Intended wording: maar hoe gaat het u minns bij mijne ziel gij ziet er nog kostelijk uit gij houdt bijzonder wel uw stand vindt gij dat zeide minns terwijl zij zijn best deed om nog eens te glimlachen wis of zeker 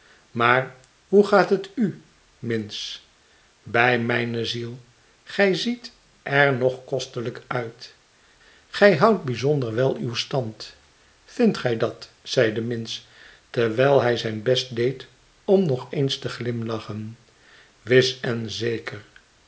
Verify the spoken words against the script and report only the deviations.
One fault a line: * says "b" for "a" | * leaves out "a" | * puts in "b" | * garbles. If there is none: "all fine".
* says "hij" for "zij"
* says "en" for "of"